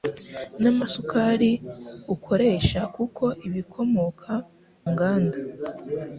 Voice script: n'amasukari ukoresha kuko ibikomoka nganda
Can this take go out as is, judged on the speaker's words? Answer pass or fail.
pass